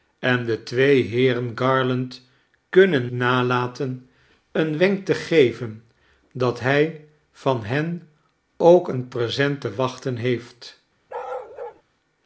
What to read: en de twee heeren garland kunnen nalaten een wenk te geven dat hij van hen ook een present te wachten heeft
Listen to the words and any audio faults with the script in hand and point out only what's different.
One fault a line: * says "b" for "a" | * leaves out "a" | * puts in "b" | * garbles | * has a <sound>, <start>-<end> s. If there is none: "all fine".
* has a bark, 11.1-11.8 s